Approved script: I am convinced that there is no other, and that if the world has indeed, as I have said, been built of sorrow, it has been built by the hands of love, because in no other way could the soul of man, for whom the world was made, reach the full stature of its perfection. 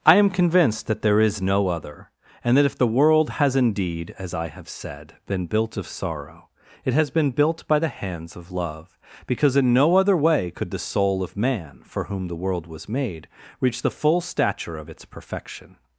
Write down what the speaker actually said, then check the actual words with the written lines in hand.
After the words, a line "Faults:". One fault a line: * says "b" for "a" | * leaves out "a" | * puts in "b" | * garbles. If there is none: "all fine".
I am convinced that there is no other, and that if the world has indeed, as I have said, been built of sorrow, it has been built by the hands of love, because in no other way could the soul of man, for whom the world was made, reach the full stature of its perfection.
Faults:
all fine